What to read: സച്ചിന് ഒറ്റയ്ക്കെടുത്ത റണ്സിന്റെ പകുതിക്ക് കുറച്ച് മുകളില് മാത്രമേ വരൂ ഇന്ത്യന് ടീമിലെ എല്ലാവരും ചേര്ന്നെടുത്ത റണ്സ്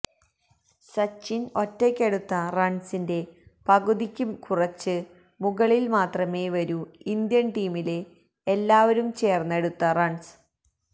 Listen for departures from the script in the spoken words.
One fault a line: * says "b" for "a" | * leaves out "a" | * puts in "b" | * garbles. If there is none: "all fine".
all fine